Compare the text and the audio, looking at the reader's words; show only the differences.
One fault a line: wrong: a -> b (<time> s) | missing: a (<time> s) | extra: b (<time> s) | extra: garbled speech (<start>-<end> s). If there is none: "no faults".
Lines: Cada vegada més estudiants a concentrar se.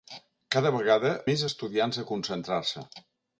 no faults